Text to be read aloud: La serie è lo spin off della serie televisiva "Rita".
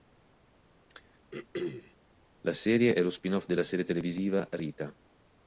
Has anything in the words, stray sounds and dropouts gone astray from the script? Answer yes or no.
yes